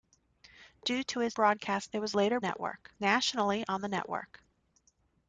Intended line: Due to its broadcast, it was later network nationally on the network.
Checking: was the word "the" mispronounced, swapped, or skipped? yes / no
no